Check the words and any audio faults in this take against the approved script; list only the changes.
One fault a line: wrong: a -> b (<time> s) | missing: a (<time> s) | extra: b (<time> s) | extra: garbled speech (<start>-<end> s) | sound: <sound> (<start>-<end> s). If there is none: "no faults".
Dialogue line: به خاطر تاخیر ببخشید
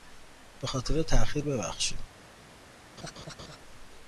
sound: laugh (3.0-3.6 s)